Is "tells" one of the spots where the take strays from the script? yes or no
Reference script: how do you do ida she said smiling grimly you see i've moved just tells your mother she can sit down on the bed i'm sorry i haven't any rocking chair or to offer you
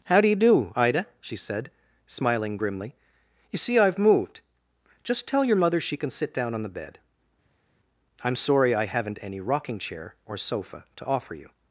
yes